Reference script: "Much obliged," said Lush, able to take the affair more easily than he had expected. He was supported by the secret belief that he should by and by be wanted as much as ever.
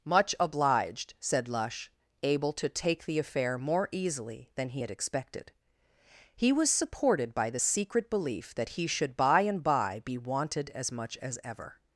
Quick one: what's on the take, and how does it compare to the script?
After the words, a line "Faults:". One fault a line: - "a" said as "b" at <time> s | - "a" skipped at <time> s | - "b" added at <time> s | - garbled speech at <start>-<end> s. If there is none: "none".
"Much obliged," said Lush, able to take the affair more easily than he had expected. He was supported by the secret belief that he should by and by be wanted as much as ever.
Faults:
none